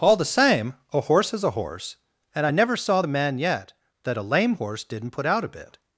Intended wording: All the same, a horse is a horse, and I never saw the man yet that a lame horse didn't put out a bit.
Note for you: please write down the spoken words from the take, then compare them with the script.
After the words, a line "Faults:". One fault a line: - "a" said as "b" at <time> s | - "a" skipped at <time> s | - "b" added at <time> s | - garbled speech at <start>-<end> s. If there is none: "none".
All the same, a horse is a horse, and I never saw the man yet that a lame horse didn't put out a bit.
Faults:
none